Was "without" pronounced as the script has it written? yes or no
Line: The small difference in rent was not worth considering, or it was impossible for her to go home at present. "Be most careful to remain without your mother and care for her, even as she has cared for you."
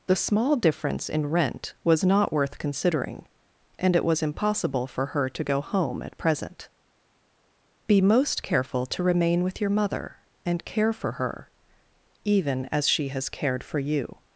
no